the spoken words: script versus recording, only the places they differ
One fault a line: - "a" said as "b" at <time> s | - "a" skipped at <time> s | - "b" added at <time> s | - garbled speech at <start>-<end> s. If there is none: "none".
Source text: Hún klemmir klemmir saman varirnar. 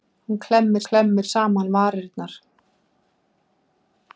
none